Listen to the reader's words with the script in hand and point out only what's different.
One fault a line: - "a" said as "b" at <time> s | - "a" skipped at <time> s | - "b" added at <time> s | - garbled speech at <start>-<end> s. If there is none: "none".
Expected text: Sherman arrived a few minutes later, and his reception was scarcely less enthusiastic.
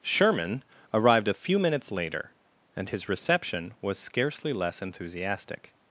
none